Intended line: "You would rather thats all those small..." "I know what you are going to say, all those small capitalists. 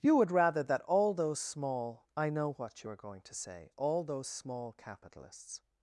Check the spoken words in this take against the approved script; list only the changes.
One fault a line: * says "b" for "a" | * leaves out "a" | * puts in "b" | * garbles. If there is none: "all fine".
* says "that" for "thats"